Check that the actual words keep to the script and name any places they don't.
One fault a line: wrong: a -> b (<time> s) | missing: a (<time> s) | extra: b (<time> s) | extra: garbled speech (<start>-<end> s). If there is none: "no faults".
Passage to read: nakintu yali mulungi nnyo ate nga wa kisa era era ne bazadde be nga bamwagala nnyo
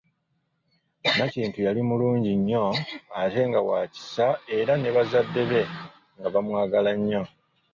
missing: era (4.7 s)